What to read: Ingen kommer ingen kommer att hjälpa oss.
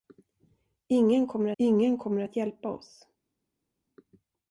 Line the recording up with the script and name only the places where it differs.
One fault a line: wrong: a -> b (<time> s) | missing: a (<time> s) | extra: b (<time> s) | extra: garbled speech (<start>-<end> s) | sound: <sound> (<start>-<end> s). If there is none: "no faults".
no faults